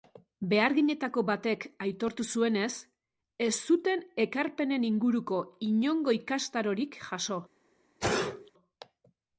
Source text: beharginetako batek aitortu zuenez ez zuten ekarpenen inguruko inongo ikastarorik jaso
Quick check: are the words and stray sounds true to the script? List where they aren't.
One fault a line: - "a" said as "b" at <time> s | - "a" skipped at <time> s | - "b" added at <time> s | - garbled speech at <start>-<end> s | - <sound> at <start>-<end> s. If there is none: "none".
- sneeze at 8.0-8.5 s